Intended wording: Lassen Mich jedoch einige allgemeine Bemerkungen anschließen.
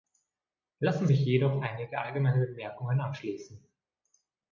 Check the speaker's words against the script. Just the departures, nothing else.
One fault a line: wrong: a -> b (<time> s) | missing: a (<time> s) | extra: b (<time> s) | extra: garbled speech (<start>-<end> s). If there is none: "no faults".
no faults